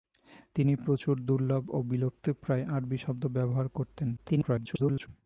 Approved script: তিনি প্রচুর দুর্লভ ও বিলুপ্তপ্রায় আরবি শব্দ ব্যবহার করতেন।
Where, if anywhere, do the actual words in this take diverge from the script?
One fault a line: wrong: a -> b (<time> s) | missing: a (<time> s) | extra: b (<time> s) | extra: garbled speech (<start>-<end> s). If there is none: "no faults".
extra: garbled speech (4.2-5.1 s)